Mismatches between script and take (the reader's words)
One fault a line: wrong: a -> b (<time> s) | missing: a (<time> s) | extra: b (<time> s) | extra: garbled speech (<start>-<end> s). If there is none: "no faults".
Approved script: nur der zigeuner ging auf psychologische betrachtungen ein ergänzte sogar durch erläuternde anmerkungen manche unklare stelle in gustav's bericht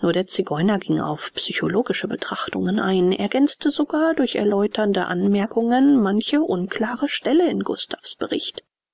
no faults